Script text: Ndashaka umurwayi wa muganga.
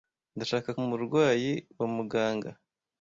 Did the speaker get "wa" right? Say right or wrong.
right